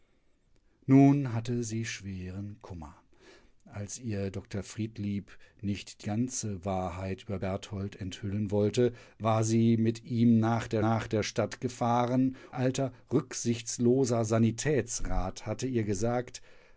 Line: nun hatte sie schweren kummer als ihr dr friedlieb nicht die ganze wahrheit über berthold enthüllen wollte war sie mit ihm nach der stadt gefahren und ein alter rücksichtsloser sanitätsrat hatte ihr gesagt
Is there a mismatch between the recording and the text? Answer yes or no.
yes